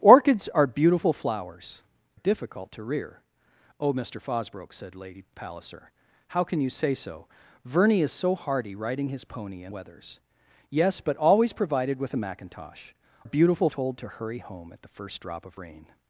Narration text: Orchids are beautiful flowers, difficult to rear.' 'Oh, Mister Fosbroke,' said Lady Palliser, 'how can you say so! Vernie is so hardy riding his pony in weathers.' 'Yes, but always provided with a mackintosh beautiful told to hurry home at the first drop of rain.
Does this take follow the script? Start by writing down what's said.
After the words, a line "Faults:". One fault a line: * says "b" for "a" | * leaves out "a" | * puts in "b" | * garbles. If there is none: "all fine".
Orchids are beautiful flowers, difficult to rear.' 'Oh, Mister Fosbroke,' said Lady Palliser, 'how can you say so! Vernie is so hardy riding his pony in weathers.' 'Yes, but always provided with a mackintosh beautiful told to hurry home at the first drop of rain.
Faults:
all fine